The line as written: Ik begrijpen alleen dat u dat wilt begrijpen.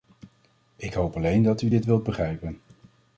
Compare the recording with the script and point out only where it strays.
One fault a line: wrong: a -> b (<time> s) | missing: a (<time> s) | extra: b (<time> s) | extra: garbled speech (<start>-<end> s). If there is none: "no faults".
wrong: begrijpen -> hoop (0.9 s)
wrong: dat -> dit (1.7 s)